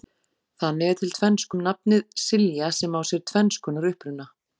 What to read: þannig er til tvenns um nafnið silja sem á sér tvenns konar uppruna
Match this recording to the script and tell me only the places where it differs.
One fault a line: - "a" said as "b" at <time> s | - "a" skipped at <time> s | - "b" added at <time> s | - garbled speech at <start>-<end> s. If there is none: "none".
none